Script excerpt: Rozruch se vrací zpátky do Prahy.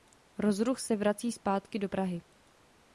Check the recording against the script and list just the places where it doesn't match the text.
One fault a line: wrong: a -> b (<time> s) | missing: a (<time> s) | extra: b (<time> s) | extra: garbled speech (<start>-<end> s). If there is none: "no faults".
no faults